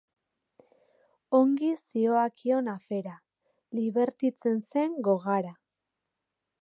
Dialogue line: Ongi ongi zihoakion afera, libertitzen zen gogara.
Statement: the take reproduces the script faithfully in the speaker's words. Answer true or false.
false